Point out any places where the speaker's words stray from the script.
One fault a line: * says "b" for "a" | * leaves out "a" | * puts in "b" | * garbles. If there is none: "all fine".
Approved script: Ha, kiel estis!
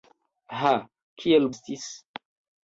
all fine